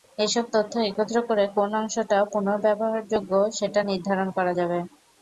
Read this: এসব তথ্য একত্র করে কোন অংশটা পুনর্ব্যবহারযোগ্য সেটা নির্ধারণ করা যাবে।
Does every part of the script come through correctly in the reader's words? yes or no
yes